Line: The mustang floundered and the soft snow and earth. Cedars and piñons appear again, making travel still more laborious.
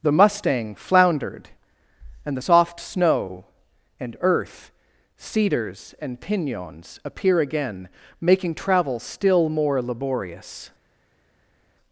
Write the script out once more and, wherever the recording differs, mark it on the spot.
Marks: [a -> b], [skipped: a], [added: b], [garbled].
The mustang floundered and the soft snow and earth. Cedars and piñons appear again, making travel still more laborious.